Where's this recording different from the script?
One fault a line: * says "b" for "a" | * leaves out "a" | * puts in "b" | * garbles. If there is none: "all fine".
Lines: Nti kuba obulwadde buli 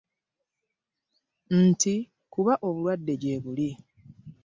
* puts in "gye"